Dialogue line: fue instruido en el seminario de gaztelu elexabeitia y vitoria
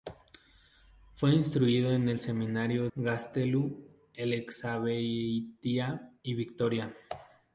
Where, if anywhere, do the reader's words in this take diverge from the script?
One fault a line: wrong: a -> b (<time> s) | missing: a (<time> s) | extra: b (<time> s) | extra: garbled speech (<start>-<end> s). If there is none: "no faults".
missing: de (2.9 s)